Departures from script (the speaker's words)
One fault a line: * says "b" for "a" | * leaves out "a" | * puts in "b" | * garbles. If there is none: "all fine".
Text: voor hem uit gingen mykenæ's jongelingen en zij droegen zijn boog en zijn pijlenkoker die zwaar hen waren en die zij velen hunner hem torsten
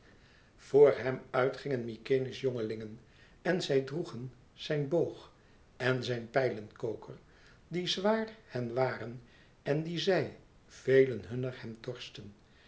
all fine